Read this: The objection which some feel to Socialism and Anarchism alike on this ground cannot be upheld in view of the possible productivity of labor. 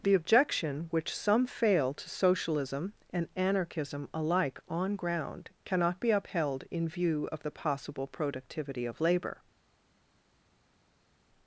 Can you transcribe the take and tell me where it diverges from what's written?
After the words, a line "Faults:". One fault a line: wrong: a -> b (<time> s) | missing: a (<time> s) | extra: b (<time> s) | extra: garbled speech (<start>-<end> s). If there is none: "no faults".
The objection which some fail to Socialism and Anarchism alike on ground cannot be upheld in view of the possible productivity of labor.
Faults:
wrong: feel -> fail (1.4 s)
missing: this (5.0 s)